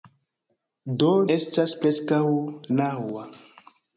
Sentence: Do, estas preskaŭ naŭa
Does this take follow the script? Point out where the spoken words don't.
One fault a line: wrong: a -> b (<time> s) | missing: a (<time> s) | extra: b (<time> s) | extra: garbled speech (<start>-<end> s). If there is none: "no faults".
no faults